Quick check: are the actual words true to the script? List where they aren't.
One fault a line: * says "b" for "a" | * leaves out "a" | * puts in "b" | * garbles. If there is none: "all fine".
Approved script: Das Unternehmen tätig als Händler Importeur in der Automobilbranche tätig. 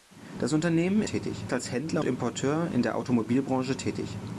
all fine